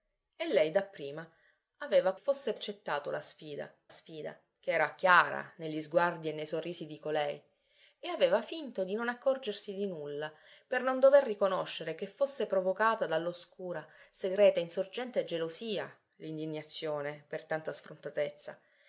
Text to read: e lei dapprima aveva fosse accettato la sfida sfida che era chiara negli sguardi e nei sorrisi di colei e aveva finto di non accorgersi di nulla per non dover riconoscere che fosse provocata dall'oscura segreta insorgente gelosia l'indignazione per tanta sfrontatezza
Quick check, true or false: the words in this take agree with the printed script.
true